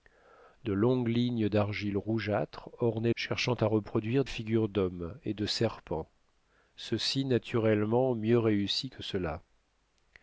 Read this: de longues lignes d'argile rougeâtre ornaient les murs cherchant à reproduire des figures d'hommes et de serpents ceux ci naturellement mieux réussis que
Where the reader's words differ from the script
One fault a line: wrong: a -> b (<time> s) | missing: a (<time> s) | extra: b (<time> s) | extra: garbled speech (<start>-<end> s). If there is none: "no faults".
missing: les murs (3.1 s)
missing: des (4.3 s)